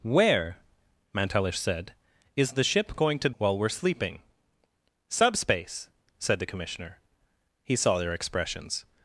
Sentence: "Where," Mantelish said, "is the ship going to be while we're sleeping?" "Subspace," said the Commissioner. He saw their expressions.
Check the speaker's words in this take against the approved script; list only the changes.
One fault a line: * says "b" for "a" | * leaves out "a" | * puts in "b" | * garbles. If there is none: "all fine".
* leaves out "be"